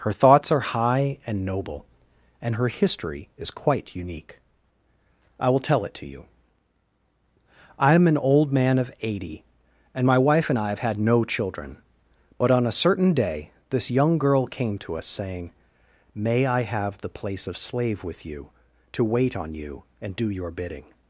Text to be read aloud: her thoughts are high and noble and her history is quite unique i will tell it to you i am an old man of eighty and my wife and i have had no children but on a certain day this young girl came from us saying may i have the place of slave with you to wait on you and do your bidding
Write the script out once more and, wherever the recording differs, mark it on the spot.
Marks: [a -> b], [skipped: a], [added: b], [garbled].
her thoughts are high and noble and her history is quite unique i will tell it to you i am an old man of eighty and my wife and i have had no children but on a certain day this young girl came [from -> to] us saying may i have the place of slave with you to wait on you and do your bidding